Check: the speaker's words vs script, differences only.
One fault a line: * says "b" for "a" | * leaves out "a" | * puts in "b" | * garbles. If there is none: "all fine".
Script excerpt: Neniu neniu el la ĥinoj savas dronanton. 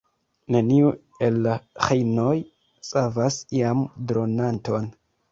* leaves out "neniu"
* puts in "iam"